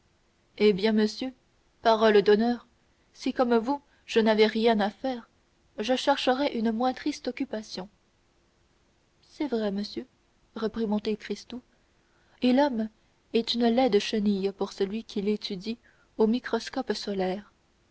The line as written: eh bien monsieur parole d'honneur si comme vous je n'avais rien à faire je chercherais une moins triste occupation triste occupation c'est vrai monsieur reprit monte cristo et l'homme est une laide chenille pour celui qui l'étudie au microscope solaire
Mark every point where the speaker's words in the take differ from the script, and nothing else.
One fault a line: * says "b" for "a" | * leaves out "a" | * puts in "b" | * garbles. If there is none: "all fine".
* leaves out "triste occupation"